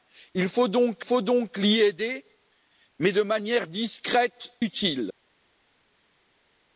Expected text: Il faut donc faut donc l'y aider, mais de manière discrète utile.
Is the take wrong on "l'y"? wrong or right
right